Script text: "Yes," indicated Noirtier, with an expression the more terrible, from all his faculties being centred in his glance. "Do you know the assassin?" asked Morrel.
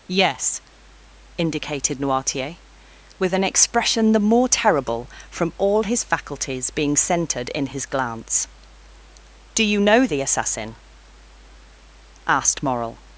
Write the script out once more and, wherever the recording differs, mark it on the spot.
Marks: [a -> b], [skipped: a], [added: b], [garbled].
"Yes," indicated Noirtier, with an expression the more terrible, from all his faculties being centred in his glance. "Do you know the assassin?" asked Morrel.